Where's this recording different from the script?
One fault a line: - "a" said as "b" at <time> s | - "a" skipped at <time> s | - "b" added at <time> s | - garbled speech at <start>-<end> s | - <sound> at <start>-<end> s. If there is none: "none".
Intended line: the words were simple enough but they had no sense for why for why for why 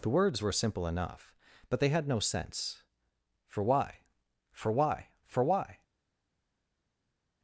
none